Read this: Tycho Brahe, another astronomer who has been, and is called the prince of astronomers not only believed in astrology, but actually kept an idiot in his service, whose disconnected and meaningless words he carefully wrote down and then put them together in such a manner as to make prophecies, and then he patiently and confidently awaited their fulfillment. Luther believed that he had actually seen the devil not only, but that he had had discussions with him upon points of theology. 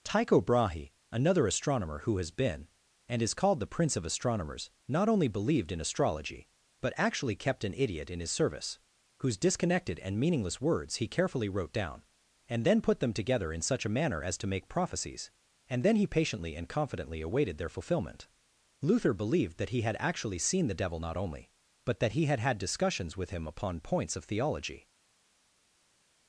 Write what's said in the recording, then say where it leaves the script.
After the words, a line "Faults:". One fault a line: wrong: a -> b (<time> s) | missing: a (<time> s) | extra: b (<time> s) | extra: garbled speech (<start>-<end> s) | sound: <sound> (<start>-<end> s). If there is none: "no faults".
Tycho Brahe, another astronomer who has been, and is called the prince of astronomers not only believed in astrology, but actually kept an idiot in his service, whose disconnected and meaningless words he carefully wrote down and then put them together in such a manner as to make prophecies, and then he patiently and confidently awaited their fulfillment. Luther believed that he had actually seen the devil not only, but that he had had discussions with him upon points of theology.
Faults:
no faults